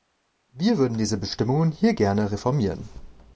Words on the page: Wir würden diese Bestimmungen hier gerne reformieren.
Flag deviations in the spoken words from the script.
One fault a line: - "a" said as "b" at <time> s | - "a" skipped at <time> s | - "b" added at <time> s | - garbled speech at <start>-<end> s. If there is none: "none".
none